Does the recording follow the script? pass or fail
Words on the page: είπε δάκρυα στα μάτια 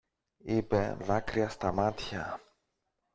pass